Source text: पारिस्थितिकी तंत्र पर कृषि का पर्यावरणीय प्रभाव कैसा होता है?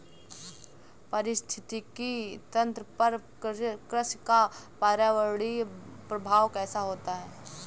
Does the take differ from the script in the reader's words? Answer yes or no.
no